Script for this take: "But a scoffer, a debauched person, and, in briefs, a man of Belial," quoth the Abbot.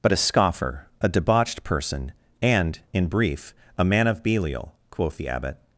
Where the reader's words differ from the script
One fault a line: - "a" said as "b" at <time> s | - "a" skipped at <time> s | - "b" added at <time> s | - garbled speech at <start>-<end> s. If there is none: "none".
- "briefs" said as "brief" at 3.1 s